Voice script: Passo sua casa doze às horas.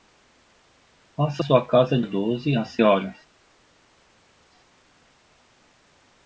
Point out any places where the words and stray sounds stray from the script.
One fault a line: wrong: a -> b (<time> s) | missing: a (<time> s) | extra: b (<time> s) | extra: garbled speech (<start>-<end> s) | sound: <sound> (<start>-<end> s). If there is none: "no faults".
no faults